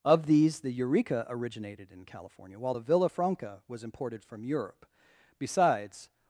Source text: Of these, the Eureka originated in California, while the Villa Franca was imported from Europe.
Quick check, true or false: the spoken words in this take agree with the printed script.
false